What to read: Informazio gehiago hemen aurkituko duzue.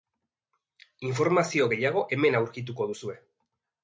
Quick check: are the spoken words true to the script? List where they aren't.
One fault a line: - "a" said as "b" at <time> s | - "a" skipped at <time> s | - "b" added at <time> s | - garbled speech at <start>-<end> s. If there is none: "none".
none